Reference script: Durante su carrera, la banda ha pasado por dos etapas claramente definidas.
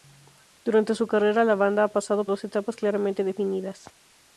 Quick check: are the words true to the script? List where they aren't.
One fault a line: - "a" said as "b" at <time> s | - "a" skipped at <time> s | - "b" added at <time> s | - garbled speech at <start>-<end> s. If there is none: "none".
- "por" skipped at 2.2 s